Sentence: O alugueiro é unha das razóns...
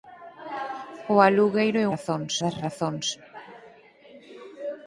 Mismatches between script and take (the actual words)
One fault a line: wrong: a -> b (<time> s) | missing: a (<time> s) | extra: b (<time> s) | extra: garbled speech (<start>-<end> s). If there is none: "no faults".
wrong: unha -> razóns (1.9 s)